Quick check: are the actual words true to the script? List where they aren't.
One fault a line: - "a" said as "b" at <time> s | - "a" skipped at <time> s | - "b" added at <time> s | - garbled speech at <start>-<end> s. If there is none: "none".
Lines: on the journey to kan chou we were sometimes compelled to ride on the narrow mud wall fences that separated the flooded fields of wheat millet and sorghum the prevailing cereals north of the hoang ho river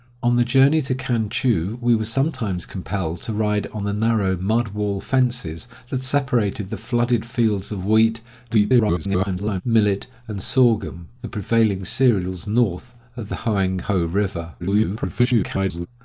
- garbled speech at 8.5-9.6 s
- garbled speech at 14.6-15.9 s